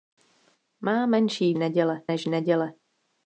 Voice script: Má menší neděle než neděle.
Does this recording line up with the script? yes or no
yes